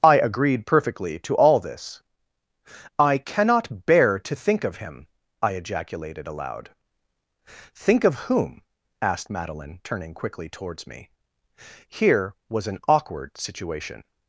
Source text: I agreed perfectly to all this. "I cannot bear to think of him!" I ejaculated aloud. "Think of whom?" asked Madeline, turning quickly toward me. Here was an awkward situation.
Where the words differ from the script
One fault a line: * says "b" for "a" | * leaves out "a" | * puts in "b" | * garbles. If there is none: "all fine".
* says "towards" for "toward"